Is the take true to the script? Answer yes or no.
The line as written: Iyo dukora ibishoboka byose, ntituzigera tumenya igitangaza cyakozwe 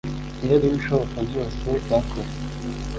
no